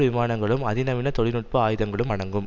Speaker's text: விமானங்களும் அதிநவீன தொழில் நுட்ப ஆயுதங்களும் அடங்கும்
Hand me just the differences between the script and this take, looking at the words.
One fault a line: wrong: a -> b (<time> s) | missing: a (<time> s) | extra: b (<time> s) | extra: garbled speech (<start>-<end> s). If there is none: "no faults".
no faults